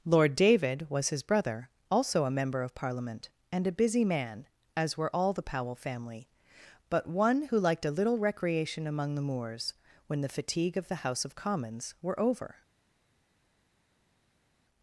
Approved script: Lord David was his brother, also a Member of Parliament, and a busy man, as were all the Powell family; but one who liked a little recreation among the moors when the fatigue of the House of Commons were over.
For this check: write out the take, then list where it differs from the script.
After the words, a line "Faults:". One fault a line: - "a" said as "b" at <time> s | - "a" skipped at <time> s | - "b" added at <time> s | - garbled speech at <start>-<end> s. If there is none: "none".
Lord David was his brother, also a Member of Parliament, and a busy man, as were all the Powell family; but one who liked a little recreation among the moors when the fatigue of the House of Commons were over.
Faults:
none